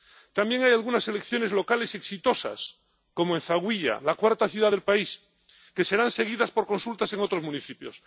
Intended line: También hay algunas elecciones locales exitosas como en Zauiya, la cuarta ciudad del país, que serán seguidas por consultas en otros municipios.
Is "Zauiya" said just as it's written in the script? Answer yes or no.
yes